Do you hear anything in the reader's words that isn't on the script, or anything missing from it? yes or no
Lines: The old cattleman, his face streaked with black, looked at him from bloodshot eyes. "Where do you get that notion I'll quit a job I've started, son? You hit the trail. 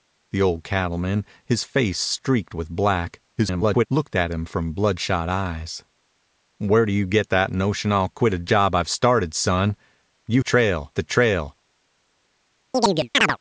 yes